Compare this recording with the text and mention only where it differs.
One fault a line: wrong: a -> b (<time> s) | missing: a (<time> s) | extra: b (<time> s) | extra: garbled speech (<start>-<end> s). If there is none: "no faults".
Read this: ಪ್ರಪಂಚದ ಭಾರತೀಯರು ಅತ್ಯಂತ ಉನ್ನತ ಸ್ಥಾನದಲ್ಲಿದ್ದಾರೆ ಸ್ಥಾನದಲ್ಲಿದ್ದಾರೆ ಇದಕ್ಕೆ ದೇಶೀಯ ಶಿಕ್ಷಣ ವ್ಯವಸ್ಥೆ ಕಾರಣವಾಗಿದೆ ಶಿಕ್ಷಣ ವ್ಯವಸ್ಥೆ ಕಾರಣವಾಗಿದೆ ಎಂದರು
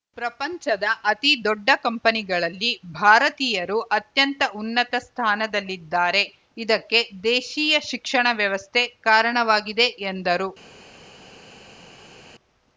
extra: ಅತಿ ದೊಡ್ಡ ಕಂಪನಿಗಳಲ್ಲಿ (1.1 s)
missing: ಸ್ಥಾನದಲ್ಲಿದ್ದಾರೆ (6.2 s)
missing: ಶಿಕ್ಷಣ ವ್ಯವಸ್ಥೆ ಕಾರಣವಾಗಿದೆ (9.9 s)